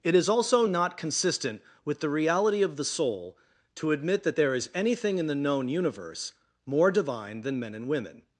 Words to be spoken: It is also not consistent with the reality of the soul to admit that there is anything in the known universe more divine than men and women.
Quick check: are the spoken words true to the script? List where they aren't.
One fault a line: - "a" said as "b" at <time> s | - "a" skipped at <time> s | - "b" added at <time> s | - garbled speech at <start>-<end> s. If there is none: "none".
none